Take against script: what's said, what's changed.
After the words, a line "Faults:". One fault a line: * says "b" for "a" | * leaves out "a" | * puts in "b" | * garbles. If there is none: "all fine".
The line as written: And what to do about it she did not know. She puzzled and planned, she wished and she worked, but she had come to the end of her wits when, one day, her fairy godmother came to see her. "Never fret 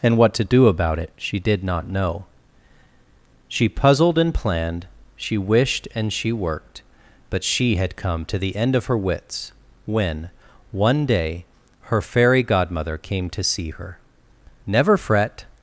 And what to do about it she did not know. She puzzled and planned, she wished and she worked, but she had come to the end of her wits when, one day, her fairy godmother came to see her. "Never fret
Faults:
all fine